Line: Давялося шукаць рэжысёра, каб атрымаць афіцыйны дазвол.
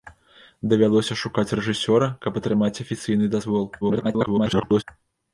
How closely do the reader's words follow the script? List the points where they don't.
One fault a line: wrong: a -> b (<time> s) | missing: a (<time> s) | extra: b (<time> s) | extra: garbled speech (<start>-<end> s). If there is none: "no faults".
extra: garbled speech (3.8-4.8 s)